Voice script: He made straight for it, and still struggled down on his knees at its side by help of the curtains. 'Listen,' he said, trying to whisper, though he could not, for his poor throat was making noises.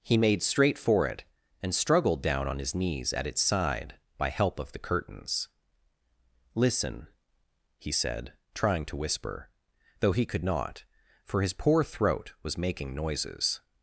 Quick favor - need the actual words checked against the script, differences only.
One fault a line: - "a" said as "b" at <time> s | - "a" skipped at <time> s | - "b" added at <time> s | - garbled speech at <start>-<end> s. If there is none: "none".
- "still" skipped at 1.7 s